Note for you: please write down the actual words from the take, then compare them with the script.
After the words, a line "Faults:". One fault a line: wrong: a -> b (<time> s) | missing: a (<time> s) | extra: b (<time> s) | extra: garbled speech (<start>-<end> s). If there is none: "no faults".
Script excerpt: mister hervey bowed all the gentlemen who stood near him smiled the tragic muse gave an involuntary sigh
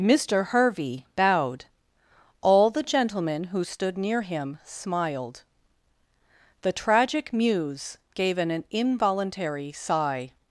mister hervey bowed all the gentlemen who stood near him smiled the tragic muse gave an involuntary sigh
Faults:
no faults